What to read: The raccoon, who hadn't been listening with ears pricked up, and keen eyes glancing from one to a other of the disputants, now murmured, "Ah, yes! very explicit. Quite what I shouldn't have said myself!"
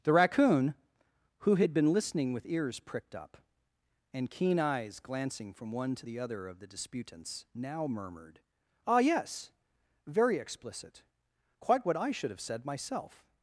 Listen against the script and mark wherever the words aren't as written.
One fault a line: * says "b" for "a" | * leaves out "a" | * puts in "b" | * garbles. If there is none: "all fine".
* says "had" for "hadn't"
* says "the" for "a"
* says "should" for "shouldn't"